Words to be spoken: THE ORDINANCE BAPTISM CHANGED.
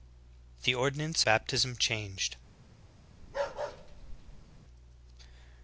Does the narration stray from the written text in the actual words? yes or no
no